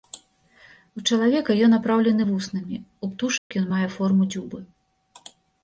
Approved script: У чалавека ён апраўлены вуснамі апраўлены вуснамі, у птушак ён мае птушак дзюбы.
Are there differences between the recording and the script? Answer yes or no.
yes